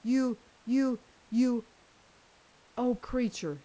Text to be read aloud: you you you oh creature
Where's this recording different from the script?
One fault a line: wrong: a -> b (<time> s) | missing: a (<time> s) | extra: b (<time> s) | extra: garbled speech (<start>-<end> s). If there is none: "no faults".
no faults